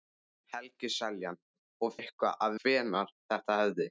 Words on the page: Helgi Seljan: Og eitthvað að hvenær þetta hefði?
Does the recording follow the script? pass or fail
pass